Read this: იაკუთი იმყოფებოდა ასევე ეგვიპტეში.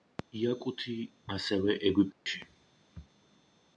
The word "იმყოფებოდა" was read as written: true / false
false